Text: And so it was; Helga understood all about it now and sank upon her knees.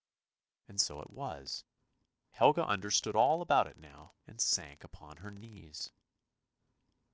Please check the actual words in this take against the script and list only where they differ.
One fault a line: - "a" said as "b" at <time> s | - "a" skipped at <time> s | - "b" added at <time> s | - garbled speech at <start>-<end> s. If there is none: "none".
none